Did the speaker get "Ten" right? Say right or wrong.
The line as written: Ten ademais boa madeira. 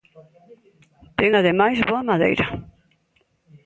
right